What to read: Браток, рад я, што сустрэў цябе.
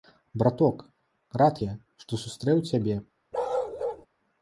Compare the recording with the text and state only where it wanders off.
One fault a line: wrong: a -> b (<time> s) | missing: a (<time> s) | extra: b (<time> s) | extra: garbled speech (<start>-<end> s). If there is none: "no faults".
no faults